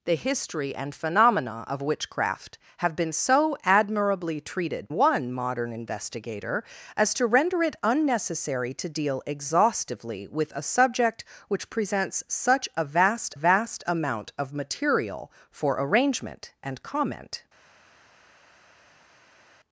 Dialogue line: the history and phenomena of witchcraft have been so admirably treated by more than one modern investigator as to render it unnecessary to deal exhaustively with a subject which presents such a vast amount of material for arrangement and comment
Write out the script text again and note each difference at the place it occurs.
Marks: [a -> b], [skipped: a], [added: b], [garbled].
the history and phenomena of witchcraft have been so admirably treated [skipped: by more than] one modern investigator as to render it unnecessary to deal exhaustively with a subject which presents such a vast [added: vast] amount of material for arrangement and comment